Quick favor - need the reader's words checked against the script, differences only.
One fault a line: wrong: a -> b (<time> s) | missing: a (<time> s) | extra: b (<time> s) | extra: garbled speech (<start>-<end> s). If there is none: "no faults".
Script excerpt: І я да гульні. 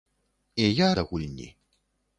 no faults